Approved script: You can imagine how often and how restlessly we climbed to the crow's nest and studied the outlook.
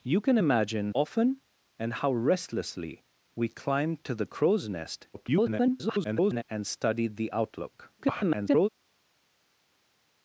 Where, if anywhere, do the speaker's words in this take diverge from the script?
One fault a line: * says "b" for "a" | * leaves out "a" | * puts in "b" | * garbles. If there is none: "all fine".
* leaves out "how"
* garbles
* garbles